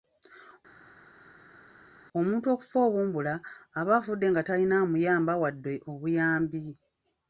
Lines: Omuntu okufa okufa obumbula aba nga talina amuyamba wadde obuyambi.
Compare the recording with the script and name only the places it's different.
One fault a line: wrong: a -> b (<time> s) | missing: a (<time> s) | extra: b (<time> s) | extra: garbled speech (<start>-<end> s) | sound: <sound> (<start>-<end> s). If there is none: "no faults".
missing: okufa (2.8 s)
extra: afudde (4.0 s)